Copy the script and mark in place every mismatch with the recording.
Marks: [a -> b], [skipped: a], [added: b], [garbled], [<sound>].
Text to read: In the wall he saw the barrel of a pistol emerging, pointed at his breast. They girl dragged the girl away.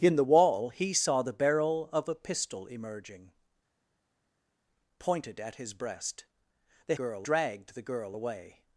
In the wall he saw the barrel of a pistol emerging, pointed at his breast. They girl dragged the girl away.